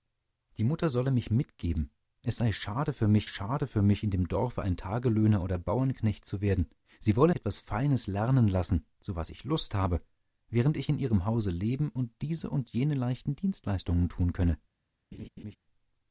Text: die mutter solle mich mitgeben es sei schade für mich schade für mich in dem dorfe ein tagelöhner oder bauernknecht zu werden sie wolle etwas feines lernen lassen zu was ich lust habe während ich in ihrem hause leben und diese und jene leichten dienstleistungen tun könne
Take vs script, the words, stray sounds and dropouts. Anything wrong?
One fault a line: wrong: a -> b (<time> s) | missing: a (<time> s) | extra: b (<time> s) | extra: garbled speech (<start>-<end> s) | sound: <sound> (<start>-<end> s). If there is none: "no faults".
sound: laugh (15.1-15.6 s)